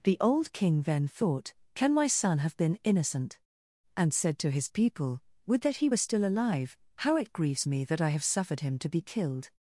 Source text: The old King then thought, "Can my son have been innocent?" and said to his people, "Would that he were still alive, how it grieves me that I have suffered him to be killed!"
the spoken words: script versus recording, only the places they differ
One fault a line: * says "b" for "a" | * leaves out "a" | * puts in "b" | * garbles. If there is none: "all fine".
all fine